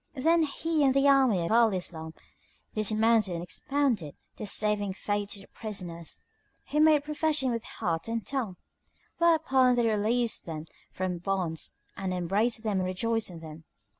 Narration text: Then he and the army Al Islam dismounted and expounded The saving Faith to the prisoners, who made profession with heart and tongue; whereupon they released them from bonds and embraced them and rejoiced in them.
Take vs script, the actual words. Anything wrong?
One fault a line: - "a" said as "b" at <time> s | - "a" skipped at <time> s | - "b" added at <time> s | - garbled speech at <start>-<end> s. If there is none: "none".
none